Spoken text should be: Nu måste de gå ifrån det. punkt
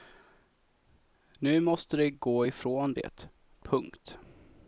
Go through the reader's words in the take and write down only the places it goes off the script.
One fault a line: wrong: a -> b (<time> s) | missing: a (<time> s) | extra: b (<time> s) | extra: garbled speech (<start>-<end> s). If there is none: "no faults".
no faults